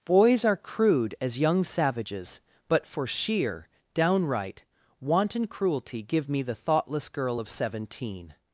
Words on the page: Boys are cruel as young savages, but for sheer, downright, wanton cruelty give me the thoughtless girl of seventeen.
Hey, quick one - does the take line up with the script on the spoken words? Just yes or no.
no